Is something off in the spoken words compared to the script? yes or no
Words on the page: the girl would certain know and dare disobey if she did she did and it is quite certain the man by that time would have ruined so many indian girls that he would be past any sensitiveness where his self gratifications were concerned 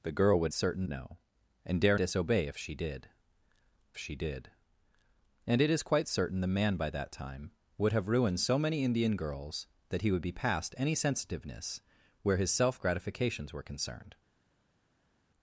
no